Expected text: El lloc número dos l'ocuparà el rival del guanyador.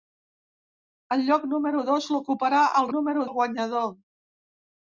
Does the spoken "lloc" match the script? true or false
true